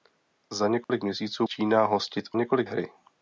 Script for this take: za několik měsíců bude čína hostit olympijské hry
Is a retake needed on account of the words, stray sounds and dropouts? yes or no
yes